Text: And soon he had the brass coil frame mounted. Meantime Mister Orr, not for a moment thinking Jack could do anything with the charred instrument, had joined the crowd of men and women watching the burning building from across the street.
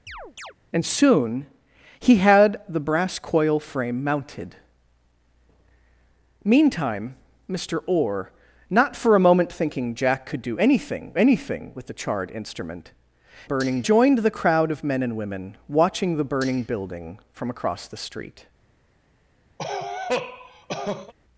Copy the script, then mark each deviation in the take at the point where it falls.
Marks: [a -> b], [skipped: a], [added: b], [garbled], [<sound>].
[chirp] And soon he had the brass coil frame mounted. Meantime Mister Orr, not for a moment thinking Jack could do anything [added: anything] with the charred instrument, [had -> burning] joined the crowd of men and women watching the burning building from across the street. [cough]